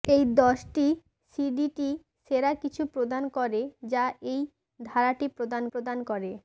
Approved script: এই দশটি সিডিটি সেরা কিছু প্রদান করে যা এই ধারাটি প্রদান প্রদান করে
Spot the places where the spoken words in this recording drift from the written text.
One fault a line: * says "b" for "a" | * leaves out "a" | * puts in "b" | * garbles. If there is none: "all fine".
all fine